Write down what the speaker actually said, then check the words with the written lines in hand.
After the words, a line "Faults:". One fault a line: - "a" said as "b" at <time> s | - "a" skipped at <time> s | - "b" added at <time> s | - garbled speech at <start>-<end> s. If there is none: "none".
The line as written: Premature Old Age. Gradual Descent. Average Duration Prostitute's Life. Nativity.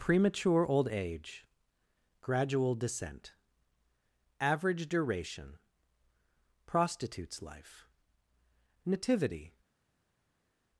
Premature Old Age. Gradual Descent. Average Duration Prostitute's Life. Nativity.
Faults:
none